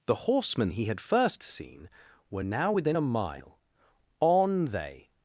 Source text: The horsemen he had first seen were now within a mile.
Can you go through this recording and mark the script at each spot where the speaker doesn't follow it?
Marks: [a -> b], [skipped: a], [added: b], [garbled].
The horsemen he had first seen were now within a mile. [added: On they]